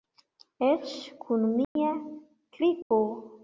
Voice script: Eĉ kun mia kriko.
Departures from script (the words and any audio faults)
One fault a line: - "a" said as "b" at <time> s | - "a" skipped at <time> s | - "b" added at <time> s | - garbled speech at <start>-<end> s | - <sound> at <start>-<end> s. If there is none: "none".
- dropout at 1.6-1.8 s
- dropout at 2.8-2.9 s